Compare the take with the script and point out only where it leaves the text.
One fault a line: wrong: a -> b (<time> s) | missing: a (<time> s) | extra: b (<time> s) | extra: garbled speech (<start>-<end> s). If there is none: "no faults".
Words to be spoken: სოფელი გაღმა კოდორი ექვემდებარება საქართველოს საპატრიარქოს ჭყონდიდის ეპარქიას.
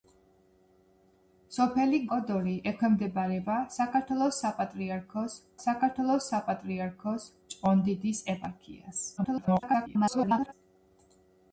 missing: გაღმა (2.0 s)
extra: საქართველოს საპატრიარქოს (5.7 s)
extra: garbled speech (9.2-10.5 s)